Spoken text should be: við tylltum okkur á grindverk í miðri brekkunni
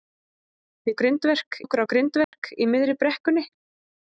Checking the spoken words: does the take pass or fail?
fail